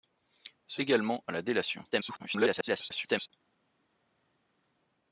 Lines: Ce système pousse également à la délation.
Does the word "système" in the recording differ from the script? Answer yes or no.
yes